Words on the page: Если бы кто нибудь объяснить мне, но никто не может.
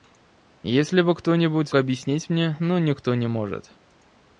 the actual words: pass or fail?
pass